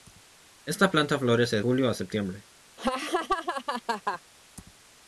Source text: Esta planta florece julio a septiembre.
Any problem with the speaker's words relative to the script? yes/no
no